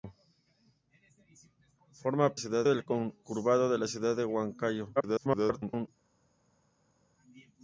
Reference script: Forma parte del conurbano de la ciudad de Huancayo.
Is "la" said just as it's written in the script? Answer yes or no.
yes